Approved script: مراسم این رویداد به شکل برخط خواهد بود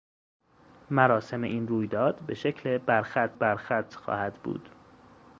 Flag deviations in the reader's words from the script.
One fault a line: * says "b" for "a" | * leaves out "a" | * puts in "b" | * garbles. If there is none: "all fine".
* puts in "برخط"